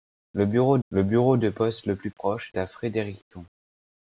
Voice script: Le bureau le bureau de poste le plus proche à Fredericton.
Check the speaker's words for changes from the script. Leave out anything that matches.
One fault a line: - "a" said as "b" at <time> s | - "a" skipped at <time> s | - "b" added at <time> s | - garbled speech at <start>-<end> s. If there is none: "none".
none